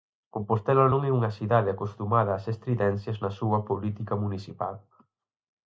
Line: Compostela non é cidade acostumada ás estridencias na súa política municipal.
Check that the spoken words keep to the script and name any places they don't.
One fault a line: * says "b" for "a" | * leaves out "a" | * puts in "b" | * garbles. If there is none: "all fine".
* puts in "unha"